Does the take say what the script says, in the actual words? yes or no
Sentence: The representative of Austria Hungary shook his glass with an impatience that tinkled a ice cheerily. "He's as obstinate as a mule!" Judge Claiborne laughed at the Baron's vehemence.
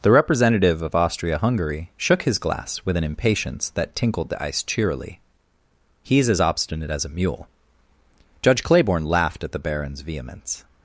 no